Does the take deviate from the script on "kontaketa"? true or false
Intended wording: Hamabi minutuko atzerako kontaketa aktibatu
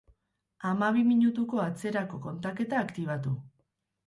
false